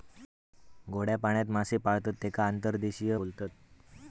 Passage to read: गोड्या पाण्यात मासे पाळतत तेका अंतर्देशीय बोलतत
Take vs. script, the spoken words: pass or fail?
pass